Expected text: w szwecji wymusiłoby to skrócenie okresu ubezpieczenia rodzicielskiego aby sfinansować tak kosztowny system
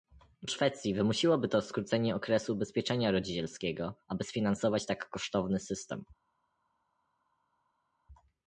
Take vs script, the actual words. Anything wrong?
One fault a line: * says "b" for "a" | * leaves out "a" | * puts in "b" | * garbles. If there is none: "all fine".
all fine